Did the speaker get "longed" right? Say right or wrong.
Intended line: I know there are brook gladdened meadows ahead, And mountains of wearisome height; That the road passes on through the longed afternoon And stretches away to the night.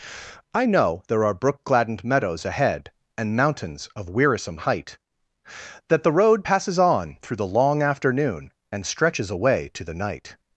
wrong